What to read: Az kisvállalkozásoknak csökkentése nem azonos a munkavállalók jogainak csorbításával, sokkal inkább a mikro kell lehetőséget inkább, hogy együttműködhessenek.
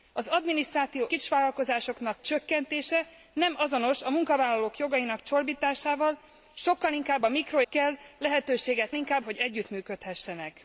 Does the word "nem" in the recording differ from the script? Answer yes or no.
no